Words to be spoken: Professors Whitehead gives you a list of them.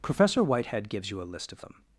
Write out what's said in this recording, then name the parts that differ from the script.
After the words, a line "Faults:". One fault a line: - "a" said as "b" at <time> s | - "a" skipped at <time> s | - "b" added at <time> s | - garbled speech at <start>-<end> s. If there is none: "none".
Professor Whitehead gives you a list of them.
Faults:
- "Professors" said as "Professor" at 0.0 s